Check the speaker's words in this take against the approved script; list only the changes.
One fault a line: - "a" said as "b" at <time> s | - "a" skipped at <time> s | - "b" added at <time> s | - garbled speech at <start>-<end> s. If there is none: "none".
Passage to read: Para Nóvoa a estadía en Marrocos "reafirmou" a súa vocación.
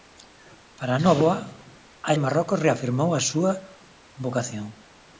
- "estadía" skipped at 2.1 s